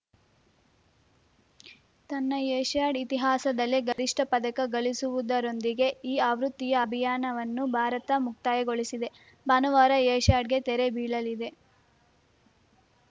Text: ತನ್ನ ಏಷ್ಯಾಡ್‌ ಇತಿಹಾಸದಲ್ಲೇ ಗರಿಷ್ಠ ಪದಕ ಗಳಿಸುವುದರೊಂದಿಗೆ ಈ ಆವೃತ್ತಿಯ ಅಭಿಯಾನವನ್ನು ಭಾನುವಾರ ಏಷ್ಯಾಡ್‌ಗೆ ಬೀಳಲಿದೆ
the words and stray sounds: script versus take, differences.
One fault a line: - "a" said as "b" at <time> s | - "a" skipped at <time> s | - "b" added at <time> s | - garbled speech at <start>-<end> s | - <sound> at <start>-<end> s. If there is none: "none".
- dropout at 3.9-4.0 s
- "ಭಾರತ ಮುಕ್ತಾಯಗೊಳಿಸಿದೆ" added at 7.7 s
- "ತೆರೆ" added at 10.7 s